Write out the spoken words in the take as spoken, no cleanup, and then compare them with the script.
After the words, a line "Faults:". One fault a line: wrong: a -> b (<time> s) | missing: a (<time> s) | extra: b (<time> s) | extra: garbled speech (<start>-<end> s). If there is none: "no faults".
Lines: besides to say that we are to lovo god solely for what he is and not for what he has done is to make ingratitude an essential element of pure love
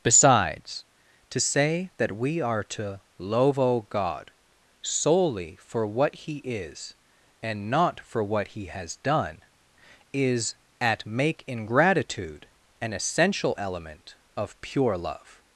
besides to say that we are to lovo god solely for what he is and not for what he has done is at make ingratitude an essential element of pure love
Faults:
wrong: to -> at (10.8 s)